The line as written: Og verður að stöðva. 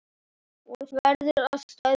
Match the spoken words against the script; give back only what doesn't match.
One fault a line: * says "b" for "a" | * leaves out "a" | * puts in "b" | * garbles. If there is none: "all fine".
all fine